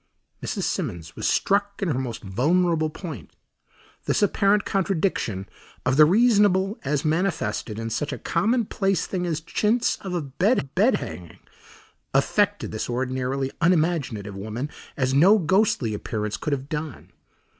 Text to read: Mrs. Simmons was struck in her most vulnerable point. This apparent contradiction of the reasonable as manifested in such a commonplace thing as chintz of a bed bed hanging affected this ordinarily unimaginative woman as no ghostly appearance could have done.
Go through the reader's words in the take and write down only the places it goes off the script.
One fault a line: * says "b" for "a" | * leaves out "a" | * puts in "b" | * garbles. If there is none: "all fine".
all fine